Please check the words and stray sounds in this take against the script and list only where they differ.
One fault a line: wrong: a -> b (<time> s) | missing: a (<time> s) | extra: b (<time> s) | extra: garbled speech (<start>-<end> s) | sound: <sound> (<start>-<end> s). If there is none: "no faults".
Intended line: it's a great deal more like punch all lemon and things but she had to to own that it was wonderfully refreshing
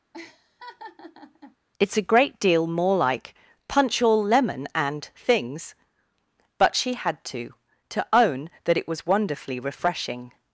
sound: laugh (0.1-1.6 s)